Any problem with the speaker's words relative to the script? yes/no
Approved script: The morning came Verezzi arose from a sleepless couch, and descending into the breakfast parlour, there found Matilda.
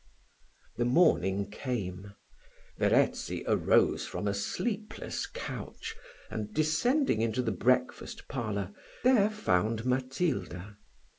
no